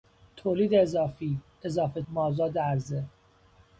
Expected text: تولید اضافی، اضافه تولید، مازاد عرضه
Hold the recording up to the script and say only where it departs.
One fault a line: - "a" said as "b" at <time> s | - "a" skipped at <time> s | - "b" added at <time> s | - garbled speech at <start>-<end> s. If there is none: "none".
- "تولید" skipped at 2.0 s